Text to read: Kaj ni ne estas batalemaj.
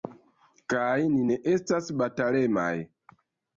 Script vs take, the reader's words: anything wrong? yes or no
no